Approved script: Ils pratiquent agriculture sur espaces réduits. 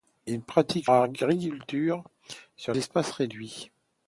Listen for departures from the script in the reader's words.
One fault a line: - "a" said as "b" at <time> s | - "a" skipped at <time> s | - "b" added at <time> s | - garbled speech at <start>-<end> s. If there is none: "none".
none